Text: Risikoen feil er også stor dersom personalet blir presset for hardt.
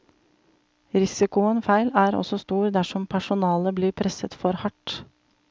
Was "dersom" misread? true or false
false